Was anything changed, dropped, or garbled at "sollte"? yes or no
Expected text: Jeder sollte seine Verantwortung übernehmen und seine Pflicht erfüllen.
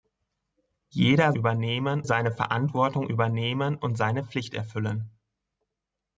yes